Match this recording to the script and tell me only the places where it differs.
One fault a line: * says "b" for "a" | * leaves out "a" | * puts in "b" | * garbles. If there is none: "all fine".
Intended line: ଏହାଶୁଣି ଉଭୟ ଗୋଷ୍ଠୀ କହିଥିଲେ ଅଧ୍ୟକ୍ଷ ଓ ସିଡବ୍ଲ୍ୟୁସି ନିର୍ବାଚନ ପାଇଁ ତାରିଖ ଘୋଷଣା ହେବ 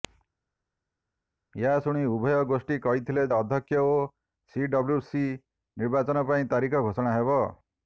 all fine